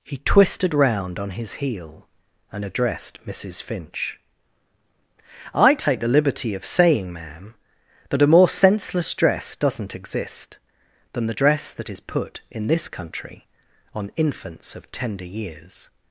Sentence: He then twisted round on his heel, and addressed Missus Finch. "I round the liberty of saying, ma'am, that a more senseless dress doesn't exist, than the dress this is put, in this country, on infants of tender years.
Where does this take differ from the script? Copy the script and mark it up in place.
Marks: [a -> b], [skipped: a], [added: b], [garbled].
He [skipped: then] twisted round on his heel, and addressed Missus Finch. "I [round -> take] the liberty of saying, ma'am, that a more senseless dress doesn't exist, than the dress [this -> that] is put, in this country, on infants of tender years.